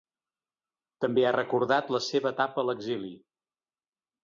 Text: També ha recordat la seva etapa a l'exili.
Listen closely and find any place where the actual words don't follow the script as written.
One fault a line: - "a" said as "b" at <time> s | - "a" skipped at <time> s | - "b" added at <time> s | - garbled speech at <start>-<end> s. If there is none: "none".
none